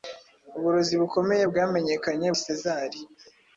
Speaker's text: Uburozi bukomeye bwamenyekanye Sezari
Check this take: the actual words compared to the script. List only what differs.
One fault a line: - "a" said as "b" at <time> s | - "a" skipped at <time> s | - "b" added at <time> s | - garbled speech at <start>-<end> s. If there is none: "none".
none